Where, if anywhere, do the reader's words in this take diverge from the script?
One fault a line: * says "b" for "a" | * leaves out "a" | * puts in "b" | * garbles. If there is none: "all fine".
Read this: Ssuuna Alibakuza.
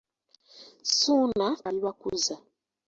all fine